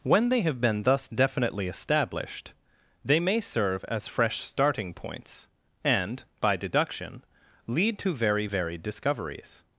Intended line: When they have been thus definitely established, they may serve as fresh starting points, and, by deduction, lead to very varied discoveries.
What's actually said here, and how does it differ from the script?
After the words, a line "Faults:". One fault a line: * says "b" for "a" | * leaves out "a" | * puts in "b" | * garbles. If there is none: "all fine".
When they have been thus definitely established, they may serve as fresh starting points, and, by deduction, lead to very varied discoveries.
Faults:
all fine